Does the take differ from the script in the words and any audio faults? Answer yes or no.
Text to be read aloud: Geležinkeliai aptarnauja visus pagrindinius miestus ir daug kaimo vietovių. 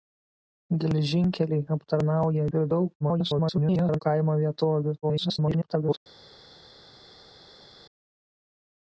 yes